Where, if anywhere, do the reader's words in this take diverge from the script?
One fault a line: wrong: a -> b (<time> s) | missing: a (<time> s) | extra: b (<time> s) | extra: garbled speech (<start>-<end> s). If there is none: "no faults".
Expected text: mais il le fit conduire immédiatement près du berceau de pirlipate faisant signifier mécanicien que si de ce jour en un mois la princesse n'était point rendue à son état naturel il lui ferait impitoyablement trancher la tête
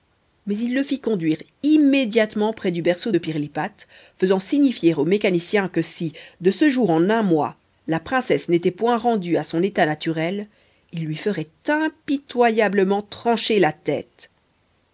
extra: au (4.9 s)